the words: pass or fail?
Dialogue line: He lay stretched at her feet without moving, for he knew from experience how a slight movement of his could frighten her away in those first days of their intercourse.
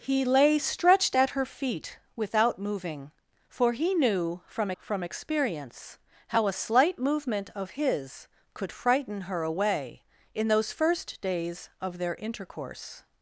fail